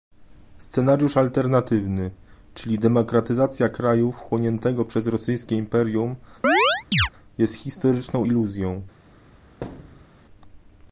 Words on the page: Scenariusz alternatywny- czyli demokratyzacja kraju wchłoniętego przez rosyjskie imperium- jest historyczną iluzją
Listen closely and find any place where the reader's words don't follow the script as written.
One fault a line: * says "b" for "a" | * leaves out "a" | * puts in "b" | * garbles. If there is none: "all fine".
all fine